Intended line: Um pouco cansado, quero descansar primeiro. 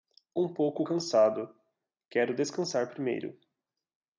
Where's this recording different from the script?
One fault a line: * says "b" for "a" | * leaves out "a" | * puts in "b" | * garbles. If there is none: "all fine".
all fine